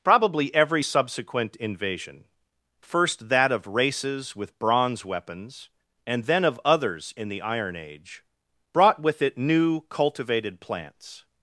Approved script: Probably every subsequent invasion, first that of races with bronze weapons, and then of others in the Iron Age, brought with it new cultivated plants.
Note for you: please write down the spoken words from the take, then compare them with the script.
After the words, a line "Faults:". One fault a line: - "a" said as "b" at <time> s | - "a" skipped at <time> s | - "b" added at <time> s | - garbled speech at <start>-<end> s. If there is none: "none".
Probably every subsequent invasion, first that of races with bronze weapons, and then of others in the Iron Age, brought with it new cultivated plants.
Faults:
none